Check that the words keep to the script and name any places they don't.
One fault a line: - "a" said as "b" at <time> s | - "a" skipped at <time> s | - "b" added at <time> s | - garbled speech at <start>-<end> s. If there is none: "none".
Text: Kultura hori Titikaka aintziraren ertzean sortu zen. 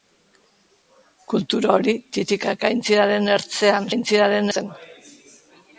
- "sortu" said as "aintziraren" at 3.9 s